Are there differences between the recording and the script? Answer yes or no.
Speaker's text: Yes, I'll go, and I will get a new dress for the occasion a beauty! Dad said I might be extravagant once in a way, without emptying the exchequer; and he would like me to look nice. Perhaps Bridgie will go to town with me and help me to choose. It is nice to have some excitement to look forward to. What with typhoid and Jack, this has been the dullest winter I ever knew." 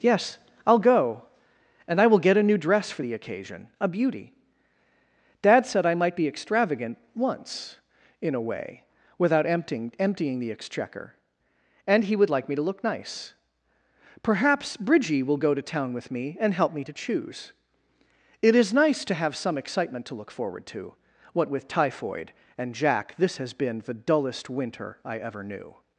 yes